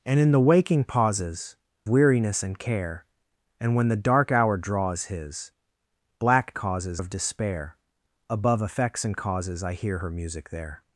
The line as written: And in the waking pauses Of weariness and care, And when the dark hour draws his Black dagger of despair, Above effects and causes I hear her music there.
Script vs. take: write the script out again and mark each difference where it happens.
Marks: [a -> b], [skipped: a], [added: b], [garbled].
And in the waking pauses [skipped: Of] weariness and care, And when the dark hour draws his Black [dagger -> causes] of despair, Above effects and causes I hear her music there.